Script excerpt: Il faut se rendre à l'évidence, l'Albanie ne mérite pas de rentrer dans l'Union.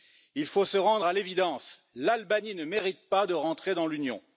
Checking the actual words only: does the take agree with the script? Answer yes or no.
yes